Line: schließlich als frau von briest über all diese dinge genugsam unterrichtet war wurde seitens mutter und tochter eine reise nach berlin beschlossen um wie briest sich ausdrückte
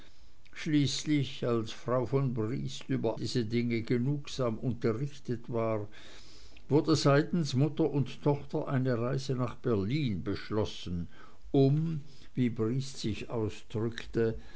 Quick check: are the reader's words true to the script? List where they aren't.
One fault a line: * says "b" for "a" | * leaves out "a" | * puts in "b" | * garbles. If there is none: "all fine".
* leaves out "all"